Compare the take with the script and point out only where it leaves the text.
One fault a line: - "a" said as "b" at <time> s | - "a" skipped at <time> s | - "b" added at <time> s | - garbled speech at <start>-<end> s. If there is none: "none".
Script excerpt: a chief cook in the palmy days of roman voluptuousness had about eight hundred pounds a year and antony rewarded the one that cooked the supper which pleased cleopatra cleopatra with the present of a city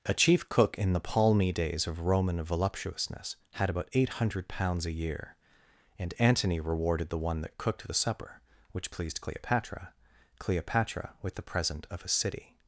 none